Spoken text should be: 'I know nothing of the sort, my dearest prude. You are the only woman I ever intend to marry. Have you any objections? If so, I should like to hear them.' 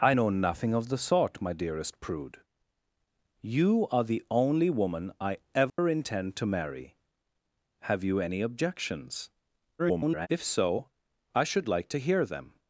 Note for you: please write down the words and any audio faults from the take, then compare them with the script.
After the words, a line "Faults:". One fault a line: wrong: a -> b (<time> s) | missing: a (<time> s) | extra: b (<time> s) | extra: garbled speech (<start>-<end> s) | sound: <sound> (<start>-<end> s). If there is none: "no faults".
'I know nothing of the sort, my dearest prude. You are the only woman I ever intend to marry. Have you any objections? [garbled] If so, I should like to hear them.'
Faults:
sound: dropout (5.7-5.8 s)
extra: garbled speech (9.8-10.3 s)